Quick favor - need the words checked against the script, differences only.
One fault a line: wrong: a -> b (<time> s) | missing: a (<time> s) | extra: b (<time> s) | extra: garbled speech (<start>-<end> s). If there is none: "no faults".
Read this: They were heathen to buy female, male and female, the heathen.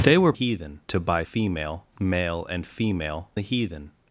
no faults